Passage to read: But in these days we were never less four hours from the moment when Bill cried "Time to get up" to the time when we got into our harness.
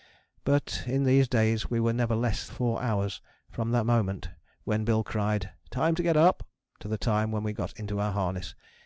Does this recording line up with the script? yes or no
yes